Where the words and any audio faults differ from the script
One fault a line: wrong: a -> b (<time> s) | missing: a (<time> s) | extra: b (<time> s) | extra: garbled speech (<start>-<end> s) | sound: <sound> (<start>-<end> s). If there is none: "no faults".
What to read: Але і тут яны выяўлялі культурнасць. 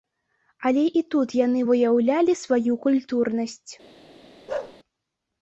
extra: сваю (2.4 s)
sound: bark (4.5-4.8 s)